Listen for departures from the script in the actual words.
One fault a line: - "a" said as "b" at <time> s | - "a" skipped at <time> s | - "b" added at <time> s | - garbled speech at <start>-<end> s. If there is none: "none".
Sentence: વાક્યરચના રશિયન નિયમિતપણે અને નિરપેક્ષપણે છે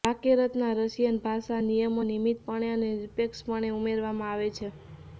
- "ભાષા નિયમો" added at 1.2 s
- "ઉમેરવામાં આવે" added at 3.7 s